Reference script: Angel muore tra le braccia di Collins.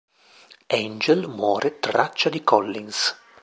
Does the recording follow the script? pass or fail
fail